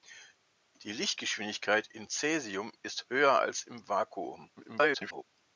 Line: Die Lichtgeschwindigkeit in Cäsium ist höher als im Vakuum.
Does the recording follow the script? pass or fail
fail